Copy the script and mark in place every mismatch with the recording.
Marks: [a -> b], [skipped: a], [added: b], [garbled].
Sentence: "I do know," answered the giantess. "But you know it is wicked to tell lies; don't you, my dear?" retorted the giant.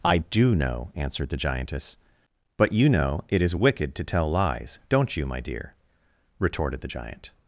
"I do know," answered the giantess. "But you know it is wicked to tell lies; don't you, my dear?" retorted the giant.